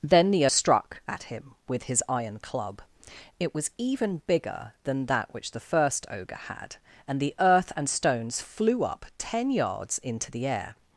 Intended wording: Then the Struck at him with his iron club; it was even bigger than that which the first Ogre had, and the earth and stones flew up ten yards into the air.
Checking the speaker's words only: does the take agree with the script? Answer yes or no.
yes